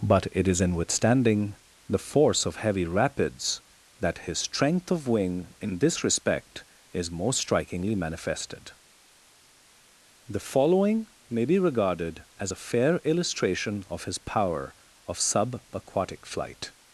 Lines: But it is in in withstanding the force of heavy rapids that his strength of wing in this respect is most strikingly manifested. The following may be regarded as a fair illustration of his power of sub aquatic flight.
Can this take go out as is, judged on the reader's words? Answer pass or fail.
fail